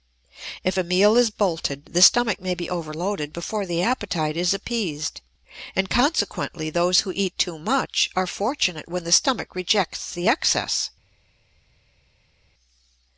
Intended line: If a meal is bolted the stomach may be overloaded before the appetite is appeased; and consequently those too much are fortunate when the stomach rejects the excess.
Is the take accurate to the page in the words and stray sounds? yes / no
no